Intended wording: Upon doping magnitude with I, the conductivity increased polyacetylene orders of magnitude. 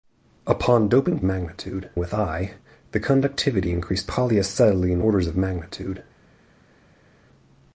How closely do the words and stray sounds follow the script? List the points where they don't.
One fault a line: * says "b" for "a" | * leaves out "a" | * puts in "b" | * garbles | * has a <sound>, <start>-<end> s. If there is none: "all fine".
all fine